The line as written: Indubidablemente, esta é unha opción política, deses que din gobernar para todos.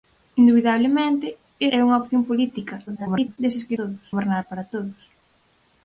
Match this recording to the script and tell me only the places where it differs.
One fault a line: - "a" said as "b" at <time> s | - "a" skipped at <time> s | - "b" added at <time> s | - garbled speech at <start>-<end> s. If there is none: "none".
- "esta" skipped at 1.3 s
- garbled speech at 2.9-3.4 s
- "din" said as "todos" at 3.8 s